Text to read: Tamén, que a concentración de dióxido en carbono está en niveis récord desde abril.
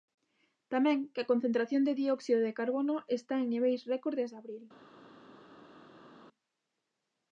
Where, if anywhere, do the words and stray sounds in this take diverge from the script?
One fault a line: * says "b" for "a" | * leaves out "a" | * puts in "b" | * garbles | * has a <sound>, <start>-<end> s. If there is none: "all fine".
* says "de" for "en"